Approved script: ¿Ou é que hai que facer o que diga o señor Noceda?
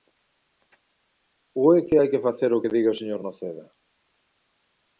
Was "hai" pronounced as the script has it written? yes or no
yes